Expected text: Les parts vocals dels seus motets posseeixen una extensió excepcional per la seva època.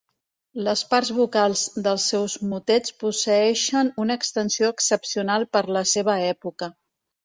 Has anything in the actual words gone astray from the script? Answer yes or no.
no